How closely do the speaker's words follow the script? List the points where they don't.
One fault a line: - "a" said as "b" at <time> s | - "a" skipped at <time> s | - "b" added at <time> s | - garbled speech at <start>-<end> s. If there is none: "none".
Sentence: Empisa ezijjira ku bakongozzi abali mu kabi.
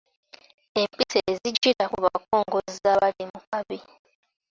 none